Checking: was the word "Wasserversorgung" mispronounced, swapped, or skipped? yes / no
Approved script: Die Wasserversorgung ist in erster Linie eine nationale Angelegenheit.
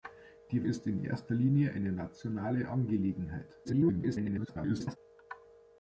yes